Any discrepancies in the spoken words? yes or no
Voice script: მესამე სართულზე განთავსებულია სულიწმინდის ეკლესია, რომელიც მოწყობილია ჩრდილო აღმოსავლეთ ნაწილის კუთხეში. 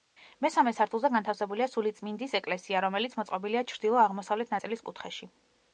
no